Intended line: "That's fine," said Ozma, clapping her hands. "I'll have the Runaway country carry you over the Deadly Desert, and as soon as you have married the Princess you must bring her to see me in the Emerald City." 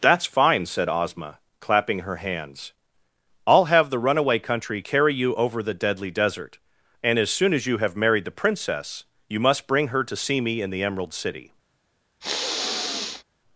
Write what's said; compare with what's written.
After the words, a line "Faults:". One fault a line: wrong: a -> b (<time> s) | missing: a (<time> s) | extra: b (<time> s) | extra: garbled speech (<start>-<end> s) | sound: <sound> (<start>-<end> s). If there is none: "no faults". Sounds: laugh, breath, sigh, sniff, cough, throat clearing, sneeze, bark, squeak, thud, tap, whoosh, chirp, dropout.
"That's fine," said Ozma, clapping her hands. "I'll have the Runaway country carry you over the Deadly Desert, and as soon as you have married the Princess you must bring her to see me in the Emerald City."
Faults:
sound: sniff (12.2-13.2 s)